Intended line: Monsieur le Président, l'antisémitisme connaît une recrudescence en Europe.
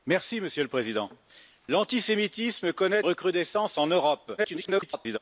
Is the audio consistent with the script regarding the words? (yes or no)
no